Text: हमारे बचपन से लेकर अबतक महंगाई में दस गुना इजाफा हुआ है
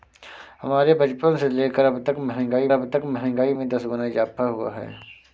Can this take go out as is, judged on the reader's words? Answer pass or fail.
fail